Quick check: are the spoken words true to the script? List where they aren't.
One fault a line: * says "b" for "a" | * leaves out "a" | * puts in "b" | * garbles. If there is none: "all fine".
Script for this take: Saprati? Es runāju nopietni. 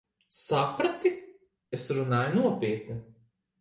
all fine